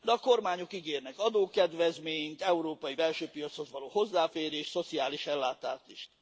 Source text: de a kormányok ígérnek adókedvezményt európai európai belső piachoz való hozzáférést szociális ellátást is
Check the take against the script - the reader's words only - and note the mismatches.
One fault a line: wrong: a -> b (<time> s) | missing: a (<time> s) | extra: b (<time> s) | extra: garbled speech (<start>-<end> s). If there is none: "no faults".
missing: európai (3.0 s)